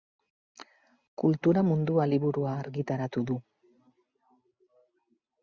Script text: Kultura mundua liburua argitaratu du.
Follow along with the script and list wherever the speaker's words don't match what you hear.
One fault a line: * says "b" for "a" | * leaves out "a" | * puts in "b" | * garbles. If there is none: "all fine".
all fine